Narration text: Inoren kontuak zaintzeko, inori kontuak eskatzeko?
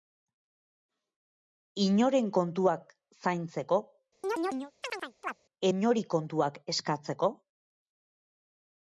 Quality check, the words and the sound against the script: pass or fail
fail